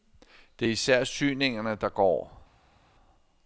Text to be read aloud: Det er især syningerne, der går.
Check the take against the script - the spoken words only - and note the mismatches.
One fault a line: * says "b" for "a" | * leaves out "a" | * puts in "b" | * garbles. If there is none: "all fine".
all fine